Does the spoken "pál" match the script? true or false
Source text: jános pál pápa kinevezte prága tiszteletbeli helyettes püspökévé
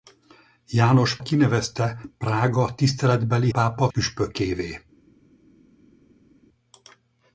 false